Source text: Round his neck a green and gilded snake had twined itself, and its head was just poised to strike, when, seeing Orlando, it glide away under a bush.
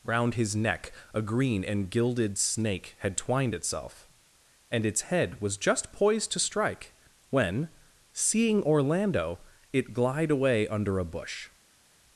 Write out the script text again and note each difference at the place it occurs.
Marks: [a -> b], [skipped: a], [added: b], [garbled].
Round his neck a green and gilded snake had twined itself, and its head was just poised to strike, when, seeing Orlando, it glide away under a bush.